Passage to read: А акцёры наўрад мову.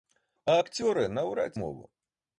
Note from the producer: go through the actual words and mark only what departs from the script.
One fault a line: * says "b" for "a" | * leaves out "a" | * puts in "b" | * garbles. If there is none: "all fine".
all fine